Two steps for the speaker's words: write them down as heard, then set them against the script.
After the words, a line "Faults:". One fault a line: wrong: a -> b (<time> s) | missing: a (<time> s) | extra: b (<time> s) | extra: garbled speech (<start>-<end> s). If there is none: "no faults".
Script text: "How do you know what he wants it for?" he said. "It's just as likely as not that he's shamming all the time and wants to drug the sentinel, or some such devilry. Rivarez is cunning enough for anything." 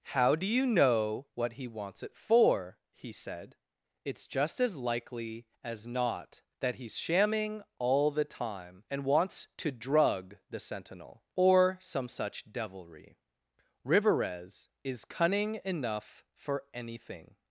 "How do you know what he wants it for?" he said. "It's just as likely as not that he's shamming all the time and wants to drug the sentinel, or some such devilry. Rivarez is cunning enough for anything."
Faults:
no faults